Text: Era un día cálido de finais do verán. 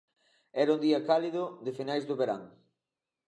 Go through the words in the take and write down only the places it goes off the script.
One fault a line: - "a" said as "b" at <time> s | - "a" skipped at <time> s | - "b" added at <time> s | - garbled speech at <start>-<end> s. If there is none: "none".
none